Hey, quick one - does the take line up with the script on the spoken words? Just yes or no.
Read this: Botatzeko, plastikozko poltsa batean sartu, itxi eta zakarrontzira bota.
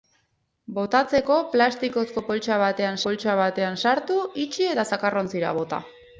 no